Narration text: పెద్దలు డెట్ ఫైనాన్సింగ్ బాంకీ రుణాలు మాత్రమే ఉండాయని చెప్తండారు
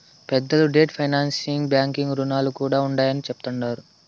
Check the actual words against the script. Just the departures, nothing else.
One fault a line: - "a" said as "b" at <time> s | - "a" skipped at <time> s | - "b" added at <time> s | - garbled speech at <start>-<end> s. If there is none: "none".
- "మాత్రమే" said as "కూడా" at 2.6 s